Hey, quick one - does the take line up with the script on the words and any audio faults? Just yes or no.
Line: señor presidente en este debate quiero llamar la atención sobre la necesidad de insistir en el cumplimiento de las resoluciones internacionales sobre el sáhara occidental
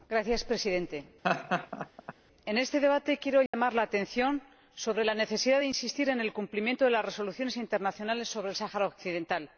no